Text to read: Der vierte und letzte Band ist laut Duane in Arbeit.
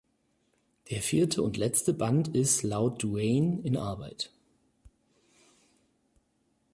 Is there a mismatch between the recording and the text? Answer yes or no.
no